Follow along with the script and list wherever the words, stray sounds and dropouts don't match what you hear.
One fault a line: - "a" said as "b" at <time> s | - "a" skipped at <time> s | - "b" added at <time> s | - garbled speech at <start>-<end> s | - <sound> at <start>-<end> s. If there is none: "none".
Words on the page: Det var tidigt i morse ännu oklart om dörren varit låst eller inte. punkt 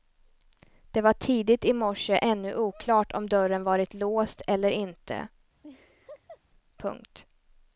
- laugh at 5.6-6.4 s